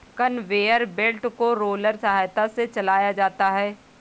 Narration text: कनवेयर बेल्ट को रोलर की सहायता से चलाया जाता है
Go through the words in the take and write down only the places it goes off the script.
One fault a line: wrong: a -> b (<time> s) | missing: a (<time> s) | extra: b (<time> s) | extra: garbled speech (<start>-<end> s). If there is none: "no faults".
missing: की (2.0 s)